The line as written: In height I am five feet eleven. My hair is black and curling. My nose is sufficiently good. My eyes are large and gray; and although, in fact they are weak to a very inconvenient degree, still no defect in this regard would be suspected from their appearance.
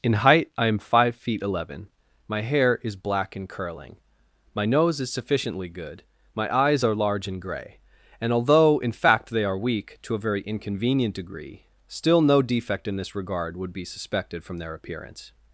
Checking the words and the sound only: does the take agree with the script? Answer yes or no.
yes